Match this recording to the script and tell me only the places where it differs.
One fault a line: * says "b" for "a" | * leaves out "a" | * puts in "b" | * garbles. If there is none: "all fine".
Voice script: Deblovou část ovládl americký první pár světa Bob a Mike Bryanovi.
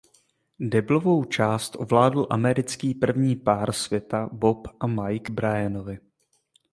all fine